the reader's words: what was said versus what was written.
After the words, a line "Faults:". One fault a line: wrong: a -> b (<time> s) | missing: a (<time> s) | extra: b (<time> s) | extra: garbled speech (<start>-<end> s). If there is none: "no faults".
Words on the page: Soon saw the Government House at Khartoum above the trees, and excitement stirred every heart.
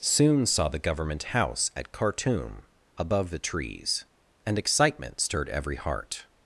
Soon saw the Government House at Khartoum above the trees, and excitement stirred every heart.
Faults:
no faults